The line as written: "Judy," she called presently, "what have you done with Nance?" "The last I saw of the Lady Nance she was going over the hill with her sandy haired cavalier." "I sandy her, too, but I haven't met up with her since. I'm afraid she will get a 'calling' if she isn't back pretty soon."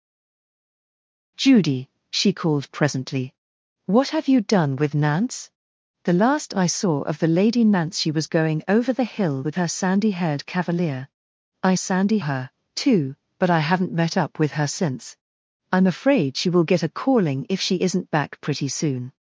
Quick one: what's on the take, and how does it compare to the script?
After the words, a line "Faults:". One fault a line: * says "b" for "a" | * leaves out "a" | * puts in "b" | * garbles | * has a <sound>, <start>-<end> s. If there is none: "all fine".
"Judy," she called presently, "what have you done with Nance?" "The last I saw of the Lady Nance she was going over the hill with her sandy haired cavalier." "I sandy her, too, but I haven't met up with her since. I'm afraid she will get a 'calling' if she isn't back pretty soon."
Faults:
all fine